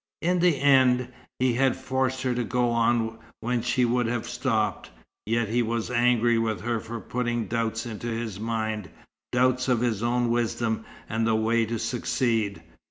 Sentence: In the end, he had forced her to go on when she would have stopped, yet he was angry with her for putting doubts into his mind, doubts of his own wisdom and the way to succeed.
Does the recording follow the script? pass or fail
pass